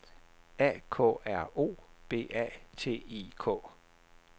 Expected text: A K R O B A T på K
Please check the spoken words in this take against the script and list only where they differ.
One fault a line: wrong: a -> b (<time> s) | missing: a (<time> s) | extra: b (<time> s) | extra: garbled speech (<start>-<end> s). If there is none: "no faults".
wrong: på -> I (3.1 s)